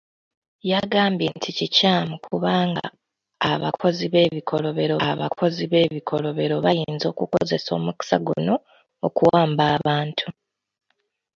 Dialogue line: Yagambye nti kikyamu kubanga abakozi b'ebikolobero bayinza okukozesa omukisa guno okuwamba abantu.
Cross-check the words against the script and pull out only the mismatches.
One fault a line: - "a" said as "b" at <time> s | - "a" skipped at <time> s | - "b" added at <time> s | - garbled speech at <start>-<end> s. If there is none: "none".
- "abakozi b'ebikolobero" added at 5.1 s